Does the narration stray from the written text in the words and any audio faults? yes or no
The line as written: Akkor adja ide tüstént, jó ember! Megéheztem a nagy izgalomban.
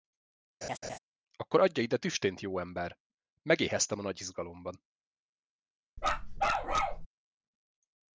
yes